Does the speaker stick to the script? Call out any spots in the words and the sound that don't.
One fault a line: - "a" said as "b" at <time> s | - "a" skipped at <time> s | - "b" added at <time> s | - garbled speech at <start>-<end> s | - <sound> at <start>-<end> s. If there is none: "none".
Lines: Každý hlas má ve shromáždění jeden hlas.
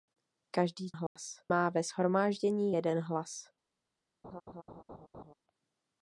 - dropout at 1.1-1.2 s
- laugh at 4.2-5.3 s